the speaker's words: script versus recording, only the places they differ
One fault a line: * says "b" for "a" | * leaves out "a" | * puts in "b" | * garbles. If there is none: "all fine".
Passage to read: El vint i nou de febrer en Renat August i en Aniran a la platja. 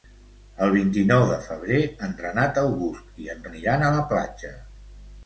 all fine